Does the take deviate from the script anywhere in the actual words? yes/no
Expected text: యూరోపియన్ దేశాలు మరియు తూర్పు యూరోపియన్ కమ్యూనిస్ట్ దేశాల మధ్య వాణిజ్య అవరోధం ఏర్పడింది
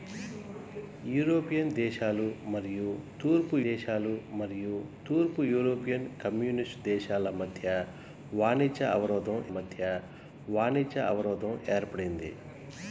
yes